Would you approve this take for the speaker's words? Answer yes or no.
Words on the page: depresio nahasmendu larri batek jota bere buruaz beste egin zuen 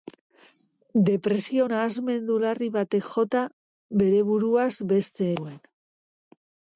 no